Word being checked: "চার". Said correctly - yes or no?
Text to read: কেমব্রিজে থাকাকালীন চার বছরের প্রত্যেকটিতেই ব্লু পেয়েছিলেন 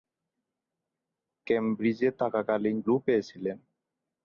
no